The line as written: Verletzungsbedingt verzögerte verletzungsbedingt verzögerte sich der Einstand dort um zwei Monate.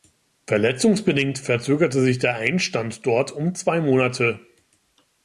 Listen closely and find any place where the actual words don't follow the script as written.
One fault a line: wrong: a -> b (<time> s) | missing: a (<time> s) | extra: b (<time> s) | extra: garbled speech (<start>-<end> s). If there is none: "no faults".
missing: verletzungsbedingt verzögerte (2.0 s)